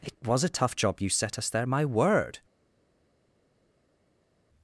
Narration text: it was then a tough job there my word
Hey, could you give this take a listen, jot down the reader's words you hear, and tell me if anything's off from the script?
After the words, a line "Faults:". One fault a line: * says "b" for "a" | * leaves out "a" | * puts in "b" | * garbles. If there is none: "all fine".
it was a tough job you set us there my word
Faults:
* leaves out "then"
* puts in "you set us"